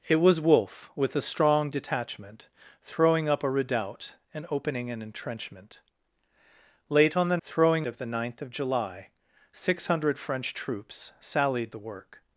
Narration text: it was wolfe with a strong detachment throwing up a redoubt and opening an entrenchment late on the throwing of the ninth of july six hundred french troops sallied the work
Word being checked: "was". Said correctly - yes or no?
yes